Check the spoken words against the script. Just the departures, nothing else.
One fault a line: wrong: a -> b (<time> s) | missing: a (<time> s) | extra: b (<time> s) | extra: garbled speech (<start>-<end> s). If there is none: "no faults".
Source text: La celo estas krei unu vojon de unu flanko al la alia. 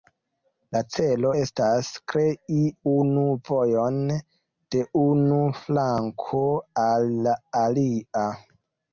no faults